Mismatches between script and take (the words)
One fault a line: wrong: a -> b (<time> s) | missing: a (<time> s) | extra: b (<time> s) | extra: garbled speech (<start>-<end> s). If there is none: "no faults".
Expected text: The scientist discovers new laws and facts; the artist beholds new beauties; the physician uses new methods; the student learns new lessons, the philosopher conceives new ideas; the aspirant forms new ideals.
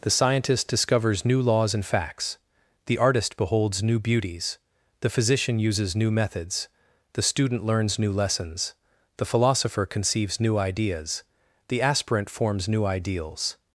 no faults